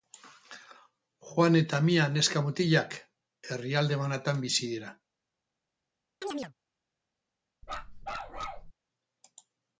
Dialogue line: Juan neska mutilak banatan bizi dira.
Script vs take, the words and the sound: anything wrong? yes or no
yes